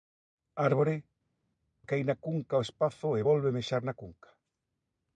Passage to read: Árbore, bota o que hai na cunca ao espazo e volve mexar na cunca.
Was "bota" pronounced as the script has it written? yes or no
no